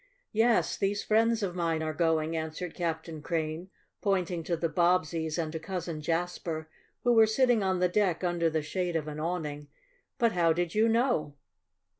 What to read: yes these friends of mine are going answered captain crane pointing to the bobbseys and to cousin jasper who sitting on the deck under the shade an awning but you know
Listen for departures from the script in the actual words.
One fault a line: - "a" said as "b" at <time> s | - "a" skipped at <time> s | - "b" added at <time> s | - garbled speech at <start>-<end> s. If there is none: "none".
- "were" added at 7.1 s
- "of" added at 8.9 s
- "how did" added at 10.3 s